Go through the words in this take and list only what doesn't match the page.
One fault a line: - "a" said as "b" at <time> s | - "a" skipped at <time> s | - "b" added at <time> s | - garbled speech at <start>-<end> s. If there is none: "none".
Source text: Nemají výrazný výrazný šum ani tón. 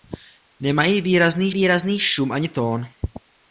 none